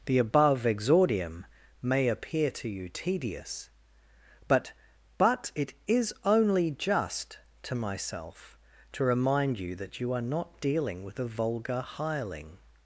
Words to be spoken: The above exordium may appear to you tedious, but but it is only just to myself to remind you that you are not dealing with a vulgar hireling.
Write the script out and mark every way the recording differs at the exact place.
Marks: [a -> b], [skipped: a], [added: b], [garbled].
The above exordium may appear to you tedious, but but it is only just to myself to remind you that you are not dealing with a vulgar hireling.